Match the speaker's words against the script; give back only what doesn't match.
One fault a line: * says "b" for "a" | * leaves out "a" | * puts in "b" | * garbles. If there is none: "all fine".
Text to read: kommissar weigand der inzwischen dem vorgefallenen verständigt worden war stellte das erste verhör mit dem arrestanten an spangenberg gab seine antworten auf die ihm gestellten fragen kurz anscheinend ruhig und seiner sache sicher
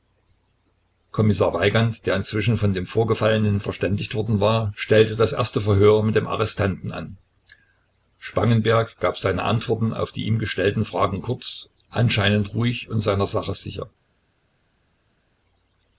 * puts in "von"